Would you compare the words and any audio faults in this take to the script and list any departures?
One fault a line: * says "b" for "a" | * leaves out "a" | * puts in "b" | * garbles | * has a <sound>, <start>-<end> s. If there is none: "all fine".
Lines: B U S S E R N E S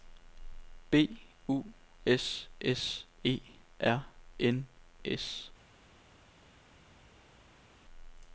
* leaves out "E"